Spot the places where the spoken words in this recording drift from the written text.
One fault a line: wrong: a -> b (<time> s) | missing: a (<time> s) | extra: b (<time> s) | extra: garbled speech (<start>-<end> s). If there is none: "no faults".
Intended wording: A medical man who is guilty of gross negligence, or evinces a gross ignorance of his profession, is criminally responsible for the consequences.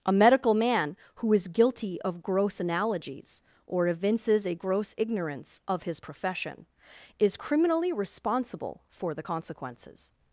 wrong: negligence -> analogies (2.6 s)